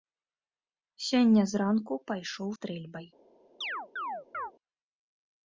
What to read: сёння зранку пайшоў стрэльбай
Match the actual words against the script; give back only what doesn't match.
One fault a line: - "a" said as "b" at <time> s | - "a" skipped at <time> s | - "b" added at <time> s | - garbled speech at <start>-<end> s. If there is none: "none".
none